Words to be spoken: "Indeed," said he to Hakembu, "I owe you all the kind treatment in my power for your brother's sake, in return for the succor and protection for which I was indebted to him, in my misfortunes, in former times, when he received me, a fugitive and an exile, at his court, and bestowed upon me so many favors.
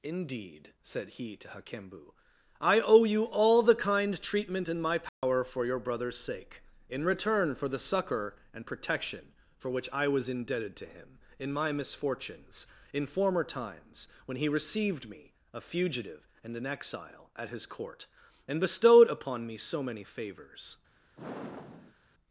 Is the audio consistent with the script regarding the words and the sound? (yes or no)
no